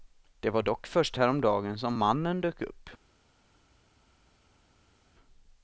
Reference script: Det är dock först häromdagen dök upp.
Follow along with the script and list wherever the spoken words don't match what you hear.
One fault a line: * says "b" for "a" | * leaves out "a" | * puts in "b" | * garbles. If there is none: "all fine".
* says "var" for "är"
* puts in "som mannen"